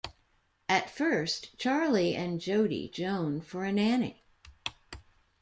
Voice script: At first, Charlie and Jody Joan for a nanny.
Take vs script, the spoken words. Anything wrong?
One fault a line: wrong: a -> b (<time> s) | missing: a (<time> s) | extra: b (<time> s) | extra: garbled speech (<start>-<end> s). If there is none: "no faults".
no faults